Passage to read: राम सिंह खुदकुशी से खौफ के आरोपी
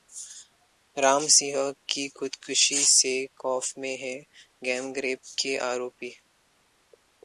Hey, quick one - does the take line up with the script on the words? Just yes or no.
no